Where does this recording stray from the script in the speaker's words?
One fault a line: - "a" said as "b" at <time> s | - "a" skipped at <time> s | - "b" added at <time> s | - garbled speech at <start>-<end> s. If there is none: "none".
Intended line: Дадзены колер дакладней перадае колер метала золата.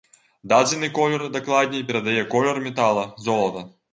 none